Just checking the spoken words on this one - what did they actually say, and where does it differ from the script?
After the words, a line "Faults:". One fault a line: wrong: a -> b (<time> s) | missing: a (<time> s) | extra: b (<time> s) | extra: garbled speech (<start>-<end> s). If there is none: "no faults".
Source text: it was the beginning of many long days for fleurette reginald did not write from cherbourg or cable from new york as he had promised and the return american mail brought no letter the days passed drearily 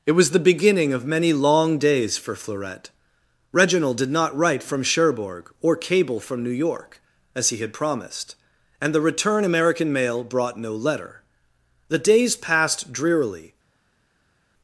it was the beginning of many long days for fleurette reginald did not write from cherbourg or cable from new york as he had promised and the return american mail brought no letter the days passed drearily
Faults:
no faults